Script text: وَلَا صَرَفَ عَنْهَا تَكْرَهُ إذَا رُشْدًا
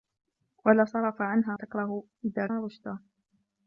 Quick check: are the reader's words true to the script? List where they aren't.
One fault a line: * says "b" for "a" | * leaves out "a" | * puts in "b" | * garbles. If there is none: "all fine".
all fine